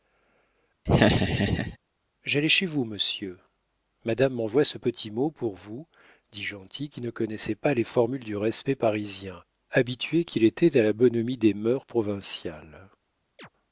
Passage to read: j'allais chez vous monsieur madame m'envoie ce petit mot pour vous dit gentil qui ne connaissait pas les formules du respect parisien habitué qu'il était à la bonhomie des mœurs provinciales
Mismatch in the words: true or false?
false